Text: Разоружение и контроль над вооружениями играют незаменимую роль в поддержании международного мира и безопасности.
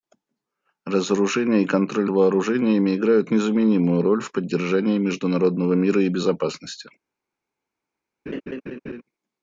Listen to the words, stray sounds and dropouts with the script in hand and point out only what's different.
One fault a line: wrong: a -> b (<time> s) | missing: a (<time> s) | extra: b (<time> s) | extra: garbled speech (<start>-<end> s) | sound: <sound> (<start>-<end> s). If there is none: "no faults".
missing: над (2.1 s)
sound: laugh (8.3-9.0 s)